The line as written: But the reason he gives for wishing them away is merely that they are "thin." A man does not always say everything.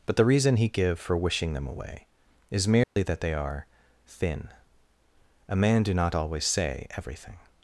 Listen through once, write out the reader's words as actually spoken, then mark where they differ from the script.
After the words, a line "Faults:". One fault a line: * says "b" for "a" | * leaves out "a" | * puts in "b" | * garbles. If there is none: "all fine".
But the reason he give for wishing them away is merely that they are "thin." A man do not always say everything.
Faults:
* says "give" for "gives"
* says "do" for "does"